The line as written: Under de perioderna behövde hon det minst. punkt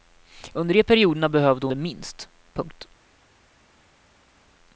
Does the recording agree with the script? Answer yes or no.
no